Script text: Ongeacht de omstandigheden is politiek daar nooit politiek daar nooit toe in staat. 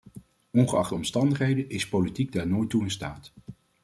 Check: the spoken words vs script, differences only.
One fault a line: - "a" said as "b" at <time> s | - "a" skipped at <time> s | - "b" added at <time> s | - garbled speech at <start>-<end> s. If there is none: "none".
- "politiek daar nooit" skipped at 2.7 s